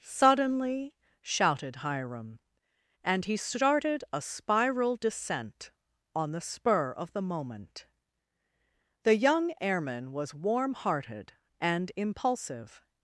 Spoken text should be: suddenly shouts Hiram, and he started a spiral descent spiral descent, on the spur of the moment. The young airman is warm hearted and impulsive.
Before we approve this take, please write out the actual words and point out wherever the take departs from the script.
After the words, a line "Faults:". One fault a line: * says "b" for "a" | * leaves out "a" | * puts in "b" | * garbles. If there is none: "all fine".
suddenly shouted Hiram, and he started a spiral descent, on the spur of the moment. The young airman was warm hearted and impulsive.
Faults:
* says "shouted" for "shouts"
* leaves out "spiral descent"
* says "was" for "is"